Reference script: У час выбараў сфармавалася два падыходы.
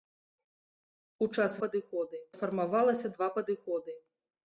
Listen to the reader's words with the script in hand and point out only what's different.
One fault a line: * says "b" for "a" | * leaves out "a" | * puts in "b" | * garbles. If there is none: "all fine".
* says "падыходы" for "выбараў"